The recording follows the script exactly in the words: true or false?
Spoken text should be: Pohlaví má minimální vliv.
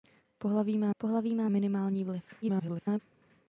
false